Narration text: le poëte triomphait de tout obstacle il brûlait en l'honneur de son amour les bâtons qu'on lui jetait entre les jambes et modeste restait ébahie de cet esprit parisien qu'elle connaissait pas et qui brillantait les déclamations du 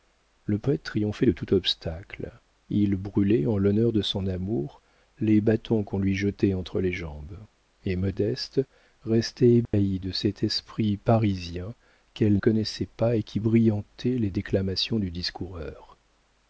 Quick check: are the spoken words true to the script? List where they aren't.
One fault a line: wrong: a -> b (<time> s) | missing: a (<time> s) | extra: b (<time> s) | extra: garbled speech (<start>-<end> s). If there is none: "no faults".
no faults